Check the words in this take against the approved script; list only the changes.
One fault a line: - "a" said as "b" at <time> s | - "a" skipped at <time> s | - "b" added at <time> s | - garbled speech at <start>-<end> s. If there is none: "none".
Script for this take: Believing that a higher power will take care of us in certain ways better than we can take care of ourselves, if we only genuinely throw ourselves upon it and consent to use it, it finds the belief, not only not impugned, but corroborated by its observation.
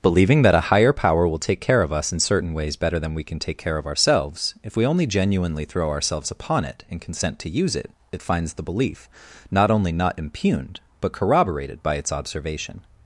none